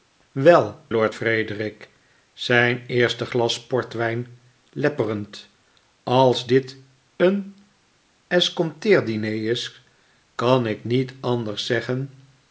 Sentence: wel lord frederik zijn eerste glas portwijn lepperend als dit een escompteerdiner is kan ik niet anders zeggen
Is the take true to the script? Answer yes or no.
yes